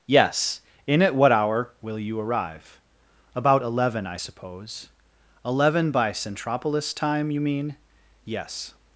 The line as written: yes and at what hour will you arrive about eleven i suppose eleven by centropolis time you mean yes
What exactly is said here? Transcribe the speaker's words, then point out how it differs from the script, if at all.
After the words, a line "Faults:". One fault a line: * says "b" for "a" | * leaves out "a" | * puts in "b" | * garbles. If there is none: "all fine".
yes in at what hour will you arrive about eleven i suppose eleven by centropolis time you mean yes
Faults:
* says "in" for "and"